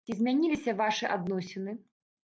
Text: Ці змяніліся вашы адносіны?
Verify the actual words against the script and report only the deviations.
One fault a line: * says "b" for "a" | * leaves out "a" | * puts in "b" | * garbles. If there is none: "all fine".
all fine